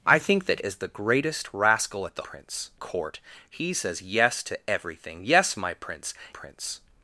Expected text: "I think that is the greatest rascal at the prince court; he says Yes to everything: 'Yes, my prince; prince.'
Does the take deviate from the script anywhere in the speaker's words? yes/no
no